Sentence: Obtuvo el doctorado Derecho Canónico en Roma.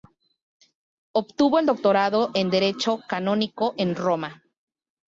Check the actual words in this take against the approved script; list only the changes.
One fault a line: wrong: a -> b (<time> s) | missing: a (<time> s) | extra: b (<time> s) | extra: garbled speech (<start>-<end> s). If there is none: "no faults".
extra: en (2.3 s)